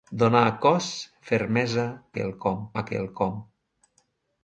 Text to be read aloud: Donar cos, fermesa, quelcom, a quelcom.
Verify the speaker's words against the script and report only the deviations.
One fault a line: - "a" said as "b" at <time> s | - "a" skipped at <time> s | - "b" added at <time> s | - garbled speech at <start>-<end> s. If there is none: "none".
none